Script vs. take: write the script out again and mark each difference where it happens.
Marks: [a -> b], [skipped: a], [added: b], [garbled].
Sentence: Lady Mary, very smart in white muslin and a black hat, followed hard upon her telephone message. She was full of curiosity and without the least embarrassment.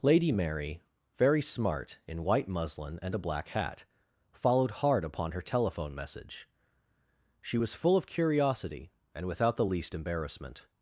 Lady Mary, very smart in white muslin and a black hat, followed hard upon her telephone message. She was full of curiosity and without the least embarrassment.